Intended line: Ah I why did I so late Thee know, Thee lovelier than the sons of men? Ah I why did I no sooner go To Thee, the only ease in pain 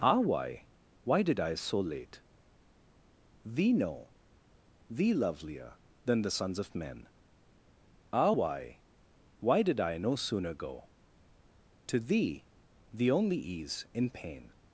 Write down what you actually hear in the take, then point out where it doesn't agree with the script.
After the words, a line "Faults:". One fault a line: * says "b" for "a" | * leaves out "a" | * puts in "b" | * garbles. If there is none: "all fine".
Ah why why did I so late Thee know, Thee lovelier than the sons of men? Ah why why did I no sooner go To Thee, the only ease in pain
Faults:
* says "why" for "I"
* says "why" for "I"